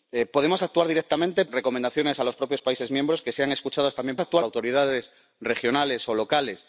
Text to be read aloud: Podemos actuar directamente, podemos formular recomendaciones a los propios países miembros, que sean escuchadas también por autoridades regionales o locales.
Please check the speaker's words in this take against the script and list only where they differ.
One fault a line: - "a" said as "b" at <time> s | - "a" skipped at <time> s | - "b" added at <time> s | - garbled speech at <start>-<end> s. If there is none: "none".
- "podemos formular" skipped at 1.4 s
- "por" said as "actuar" at 4.2 s